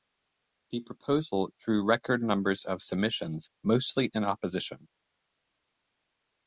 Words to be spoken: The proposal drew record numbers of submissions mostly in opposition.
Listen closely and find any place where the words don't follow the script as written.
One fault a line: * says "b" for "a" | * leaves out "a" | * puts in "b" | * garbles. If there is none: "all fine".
all fine